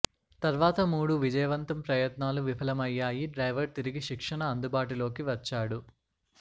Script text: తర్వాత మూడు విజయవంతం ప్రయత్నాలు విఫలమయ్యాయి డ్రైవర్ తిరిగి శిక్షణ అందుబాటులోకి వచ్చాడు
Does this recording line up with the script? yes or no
yes